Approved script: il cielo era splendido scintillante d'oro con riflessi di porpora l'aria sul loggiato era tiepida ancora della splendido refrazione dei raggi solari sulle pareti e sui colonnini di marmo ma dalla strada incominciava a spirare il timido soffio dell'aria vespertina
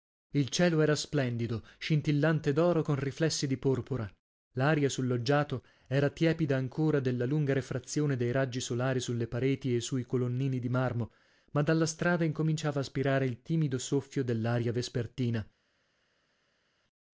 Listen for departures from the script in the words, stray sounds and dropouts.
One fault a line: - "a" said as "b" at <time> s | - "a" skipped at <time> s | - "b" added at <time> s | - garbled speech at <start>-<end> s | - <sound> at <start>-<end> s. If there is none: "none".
- "splendido" said as "lunga" at 7.2 s